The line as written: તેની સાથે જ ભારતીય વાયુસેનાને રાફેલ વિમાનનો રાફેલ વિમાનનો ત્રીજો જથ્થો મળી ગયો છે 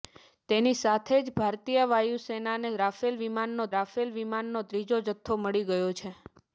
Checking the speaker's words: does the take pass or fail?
pass